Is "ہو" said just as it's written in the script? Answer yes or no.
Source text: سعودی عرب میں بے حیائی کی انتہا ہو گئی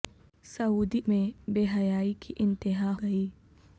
no